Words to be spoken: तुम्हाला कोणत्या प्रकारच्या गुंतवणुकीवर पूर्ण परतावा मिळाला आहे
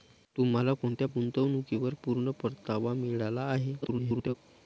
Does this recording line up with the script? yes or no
no